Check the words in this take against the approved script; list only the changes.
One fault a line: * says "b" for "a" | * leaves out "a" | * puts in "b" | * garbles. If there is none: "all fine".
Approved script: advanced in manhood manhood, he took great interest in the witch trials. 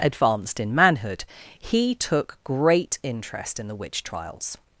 * leaves out "manhood"